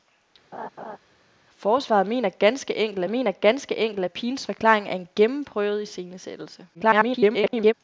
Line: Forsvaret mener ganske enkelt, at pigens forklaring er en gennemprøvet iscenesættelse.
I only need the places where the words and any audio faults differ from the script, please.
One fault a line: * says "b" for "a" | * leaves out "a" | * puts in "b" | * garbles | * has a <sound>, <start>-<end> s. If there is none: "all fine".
* has a laugh, 0.5-1.0 s
* puts in "mener ganske enkelt"
* garbles